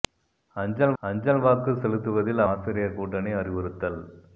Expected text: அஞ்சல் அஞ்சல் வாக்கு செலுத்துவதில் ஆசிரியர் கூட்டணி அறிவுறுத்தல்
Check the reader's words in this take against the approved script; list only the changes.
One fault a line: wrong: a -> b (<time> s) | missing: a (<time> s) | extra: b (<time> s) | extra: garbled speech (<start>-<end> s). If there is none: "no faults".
no faults